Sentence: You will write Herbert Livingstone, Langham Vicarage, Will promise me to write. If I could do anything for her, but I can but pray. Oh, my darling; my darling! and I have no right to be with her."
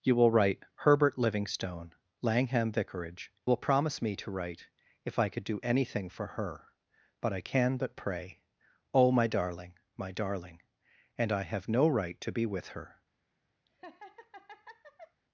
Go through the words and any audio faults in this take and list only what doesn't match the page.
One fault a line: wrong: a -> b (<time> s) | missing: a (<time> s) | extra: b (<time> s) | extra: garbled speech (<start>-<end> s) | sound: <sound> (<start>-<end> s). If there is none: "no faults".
sound: laugh (13.7-15.2 s)